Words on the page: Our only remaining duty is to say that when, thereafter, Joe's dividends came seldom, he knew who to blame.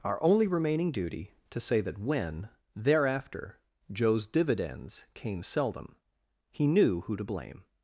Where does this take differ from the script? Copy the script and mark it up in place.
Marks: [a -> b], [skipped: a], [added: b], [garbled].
Our only remaining duty [skipped: is] to say that when, thereafter, Joe's dividends came seldom, he knew who to blame.